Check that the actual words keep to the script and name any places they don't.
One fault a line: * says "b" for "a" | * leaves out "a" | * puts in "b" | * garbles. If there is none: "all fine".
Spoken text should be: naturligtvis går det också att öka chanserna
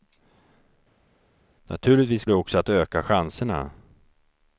* leaves out "går"